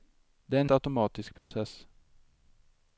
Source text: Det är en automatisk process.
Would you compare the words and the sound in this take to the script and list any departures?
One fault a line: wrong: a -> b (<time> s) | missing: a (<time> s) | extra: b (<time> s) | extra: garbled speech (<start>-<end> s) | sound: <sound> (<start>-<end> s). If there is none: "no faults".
sound: dropout (1.4-1.5 s)